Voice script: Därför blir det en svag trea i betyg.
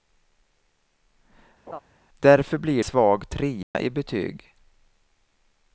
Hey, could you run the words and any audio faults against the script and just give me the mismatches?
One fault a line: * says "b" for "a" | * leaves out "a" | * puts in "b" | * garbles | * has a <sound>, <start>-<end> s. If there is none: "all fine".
* has a laugh, 1.7-1.8 s
* leaves out "det en"
* has a dropout, 3.6-3.7 s